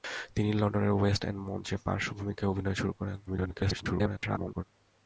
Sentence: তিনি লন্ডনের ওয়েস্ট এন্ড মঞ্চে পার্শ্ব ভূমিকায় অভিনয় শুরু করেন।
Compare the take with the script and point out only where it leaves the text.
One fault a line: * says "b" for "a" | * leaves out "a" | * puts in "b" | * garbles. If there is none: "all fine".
* garbles